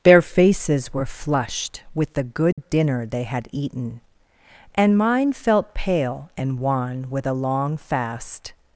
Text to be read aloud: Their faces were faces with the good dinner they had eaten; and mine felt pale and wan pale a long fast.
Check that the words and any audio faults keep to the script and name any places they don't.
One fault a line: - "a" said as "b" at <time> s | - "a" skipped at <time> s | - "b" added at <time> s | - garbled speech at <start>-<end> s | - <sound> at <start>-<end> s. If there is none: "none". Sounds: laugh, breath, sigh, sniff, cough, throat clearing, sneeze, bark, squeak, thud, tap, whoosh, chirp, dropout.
- "faces" said as "flushed" at 1.1 s
- dropout at 2.5-2.6 s
- "pale" said as "with" at 7.1 s